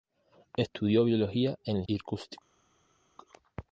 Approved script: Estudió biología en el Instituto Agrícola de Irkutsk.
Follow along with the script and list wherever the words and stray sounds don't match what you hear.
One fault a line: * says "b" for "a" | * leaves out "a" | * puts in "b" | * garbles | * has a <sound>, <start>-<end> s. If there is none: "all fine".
* leaves out "Instituto Agrícola de"